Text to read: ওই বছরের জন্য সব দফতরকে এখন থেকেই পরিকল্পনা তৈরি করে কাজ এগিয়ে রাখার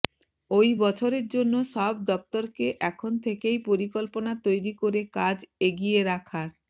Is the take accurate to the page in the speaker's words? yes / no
yes